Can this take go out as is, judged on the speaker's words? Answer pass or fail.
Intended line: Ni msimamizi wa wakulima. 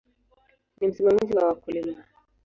pass